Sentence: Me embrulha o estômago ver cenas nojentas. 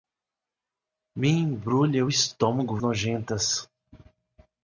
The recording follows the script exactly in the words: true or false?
false